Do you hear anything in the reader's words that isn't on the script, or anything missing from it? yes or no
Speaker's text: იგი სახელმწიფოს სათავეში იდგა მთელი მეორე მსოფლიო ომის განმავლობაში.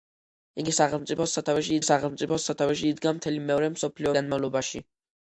yes